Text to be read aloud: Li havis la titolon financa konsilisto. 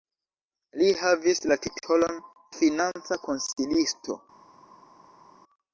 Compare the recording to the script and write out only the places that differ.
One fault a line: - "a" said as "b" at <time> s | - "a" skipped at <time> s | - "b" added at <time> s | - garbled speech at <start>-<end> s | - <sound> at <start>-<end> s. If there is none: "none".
none